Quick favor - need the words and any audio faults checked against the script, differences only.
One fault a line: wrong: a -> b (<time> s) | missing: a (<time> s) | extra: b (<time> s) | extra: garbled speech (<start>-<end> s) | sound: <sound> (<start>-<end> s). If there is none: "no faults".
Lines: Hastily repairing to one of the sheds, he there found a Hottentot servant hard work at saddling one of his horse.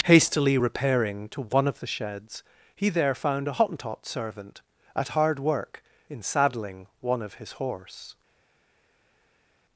extra: at (4.9 s)
wrong: at -> in (6.1 s)